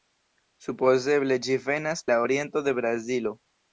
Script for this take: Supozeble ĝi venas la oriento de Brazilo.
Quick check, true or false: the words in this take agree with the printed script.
true